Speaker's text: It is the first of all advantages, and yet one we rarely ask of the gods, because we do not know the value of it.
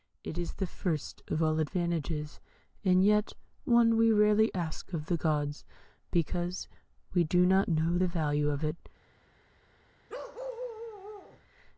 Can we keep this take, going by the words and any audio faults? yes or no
no